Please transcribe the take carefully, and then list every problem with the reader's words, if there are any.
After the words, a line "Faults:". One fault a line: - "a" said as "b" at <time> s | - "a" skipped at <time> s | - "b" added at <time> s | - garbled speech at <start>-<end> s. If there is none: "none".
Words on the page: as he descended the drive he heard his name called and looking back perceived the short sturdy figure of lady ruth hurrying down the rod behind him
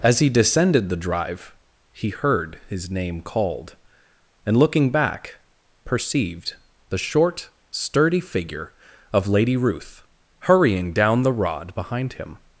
as he descended the drive he heard his name called and looking back perceived the short sturdy figure of lady ruth hurrying down the rod behind him
Faults:
none